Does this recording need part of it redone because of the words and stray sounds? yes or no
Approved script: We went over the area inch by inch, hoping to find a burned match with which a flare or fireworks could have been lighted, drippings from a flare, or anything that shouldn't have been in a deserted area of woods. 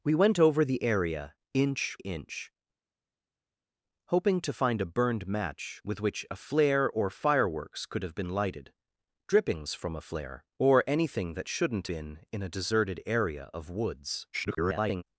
yes